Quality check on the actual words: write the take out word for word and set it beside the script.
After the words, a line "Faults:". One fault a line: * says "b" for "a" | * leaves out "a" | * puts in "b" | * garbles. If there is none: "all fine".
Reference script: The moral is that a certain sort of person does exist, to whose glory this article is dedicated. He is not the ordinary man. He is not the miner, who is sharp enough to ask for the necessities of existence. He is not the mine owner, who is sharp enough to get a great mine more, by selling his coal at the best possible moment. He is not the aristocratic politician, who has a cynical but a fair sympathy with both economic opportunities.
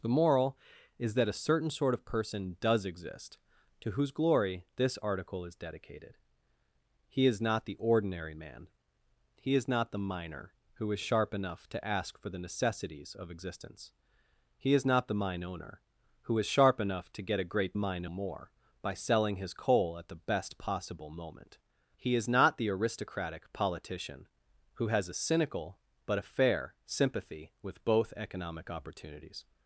The moral is that a certain sort of person does exist, to whose glory this article is dedicated. He is not the ordinary man. He is not the miner, who is sharp enough to ask for the necessities of existence. He is not the mine owner, who is sharp enough to get a great mine more, by selling his coal at the best possible moment. He is not the aristocratic politician, who has a cynical but a fair sympathy with both economic opportunities.
Faults:
all fine